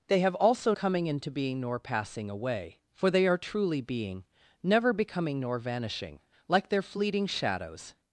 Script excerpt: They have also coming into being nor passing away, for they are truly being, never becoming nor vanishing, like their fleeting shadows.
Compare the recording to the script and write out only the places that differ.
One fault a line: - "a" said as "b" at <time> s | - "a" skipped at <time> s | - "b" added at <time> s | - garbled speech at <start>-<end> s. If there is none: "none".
none